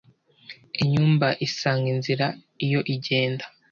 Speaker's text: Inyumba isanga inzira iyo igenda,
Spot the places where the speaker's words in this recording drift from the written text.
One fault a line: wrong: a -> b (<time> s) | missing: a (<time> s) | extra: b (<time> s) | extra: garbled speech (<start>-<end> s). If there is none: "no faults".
no faults